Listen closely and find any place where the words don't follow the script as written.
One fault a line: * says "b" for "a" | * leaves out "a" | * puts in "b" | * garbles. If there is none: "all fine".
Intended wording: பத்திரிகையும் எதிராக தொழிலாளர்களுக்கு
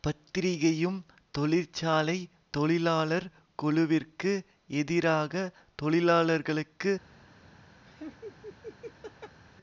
* puts in "தொழிற்சாலை தொழிலாளர் குழுவிற்கு"